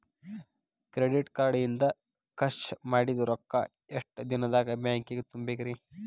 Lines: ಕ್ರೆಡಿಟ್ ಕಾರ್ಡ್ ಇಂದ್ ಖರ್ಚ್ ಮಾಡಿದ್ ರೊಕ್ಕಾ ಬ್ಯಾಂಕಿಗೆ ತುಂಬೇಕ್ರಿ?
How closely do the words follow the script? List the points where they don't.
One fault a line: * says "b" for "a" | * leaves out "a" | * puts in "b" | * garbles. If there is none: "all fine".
* puts in "ಎಷ್ಟ ದಿನದಾಗ್"